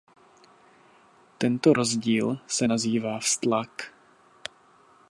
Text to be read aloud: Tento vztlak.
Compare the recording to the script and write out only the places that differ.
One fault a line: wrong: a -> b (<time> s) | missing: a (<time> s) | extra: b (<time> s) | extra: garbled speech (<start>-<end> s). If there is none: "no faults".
extra: rozdíl se nazývá (1.7 s)